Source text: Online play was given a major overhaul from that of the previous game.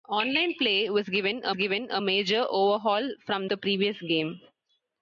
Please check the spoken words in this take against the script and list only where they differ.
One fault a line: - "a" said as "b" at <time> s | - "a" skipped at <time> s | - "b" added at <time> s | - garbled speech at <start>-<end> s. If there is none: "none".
- "given a" added at 1.6 s
- "that of" skipped at 3.5 s